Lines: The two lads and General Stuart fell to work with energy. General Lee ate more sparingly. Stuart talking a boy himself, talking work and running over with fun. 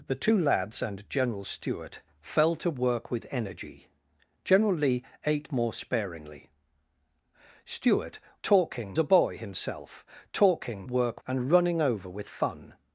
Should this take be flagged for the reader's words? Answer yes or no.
no